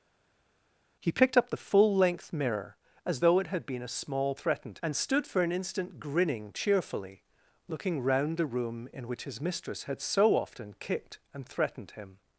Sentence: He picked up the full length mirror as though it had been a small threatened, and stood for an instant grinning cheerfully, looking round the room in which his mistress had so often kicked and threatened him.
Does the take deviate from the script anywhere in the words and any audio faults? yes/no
no